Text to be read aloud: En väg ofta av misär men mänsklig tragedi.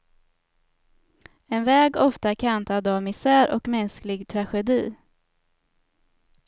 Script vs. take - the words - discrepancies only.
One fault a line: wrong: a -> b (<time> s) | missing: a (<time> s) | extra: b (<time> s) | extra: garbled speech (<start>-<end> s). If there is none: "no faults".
extra: kantad (2.4 s)
wrong: men -> och (3.5 s)